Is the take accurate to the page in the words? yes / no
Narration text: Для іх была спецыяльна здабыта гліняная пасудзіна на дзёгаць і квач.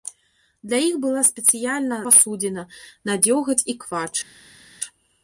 no